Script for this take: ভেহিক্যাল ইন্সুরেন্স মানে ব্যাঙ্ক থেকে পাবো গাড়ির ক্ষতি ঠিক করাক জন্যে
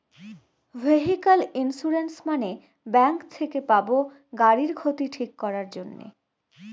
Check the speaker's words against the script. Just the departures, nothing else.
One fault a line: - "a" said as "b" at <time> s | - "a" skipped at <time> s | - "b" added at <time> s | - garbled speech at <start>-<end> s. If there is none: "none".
none